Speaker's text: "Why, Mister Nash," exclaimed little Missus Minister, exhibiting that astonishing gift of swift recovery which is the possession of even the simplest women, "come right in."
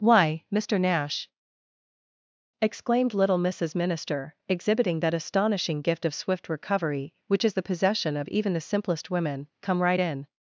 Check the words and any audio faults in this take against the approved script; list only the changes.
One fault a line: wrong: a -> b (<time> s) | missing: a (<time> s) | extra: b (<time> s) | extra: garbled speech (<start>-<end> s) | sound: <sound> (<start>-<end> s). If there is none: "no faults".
no faults